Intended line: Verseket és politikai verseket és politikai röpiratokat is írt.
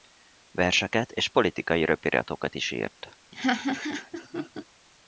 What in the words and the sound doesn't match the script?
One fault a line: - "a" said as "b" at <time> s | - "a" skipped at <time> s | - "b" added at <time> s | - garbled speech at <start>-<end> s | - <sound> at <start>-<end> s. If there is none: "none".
- "verseket és politikai" skipped at 1.9 s
- laugh at 3.3-4.6 s